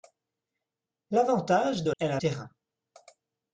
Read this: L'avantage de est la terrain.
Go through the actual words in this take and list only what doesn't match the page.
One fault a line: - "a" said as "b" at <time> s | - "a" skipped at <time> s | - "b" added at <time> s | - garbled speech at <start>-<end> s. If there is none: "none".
none